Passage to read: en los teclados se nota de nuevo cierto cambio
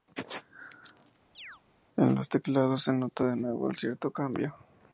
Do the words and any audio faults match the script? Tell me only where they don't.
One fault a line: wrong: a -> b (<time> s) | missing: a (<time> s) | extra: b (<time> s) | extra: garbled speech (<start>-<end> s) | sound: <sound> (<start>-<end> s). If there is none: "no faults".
sound: chirp (1.3-1.6 s)